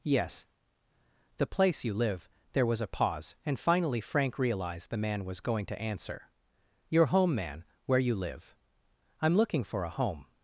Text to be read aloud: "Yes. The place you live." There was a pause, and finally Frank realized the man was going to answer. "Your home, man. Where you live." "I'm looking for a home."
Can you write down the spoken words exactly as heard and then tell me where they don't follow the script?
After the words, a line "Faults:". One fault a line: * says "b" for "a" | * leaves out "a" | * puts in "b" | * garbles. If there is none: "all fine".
"Yes. The place you live." There was a pause, and finally Frank realized the man was going to answer. "Your home, man. Where you live." "I'm looking for a home."
Faults:
all fine